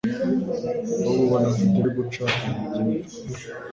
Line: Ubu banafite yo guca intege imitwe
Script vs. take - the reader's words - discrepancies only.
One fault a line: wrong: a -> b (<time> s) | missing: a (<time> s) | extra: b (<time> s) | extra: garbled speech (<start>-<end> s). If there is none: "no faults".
no faults